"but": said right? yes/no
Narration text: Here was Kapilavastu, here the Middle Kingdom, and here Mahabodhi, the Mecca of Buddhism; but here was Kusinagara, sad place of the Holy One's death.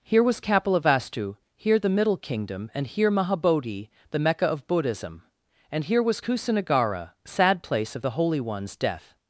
no